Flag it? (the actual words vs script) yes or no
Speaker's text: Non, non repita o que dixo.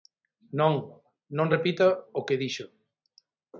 no